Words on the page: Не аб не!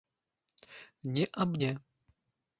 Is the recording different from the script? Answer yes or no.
no